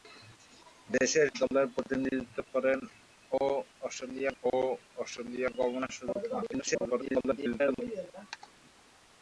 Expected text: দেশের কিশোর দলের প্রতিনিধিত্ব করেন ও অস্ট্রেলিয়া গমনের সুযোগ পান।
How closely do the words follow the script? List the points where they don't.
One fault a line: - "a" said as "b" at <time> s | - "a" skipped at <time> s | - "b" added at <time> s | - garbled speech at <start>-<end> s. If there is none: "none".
- "কিশোর" skipped at 1.3 s
- "ও অস্ট্রেলিয়া" added at 4.4 s
- garbled speech at 6.5-7.8 s